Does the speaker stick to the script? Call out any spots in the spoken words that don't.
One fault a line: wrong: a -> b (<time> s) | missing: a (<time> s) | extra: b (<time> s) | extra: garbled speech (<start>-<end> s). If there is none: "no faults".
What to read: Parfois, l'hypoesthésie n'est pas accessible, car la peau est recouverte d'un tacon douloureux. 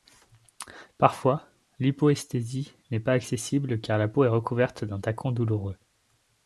no faults